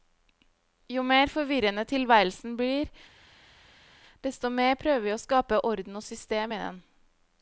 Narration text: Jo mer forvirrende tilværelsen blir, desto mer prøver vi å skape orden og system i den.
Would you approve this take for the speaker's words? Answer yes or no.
yes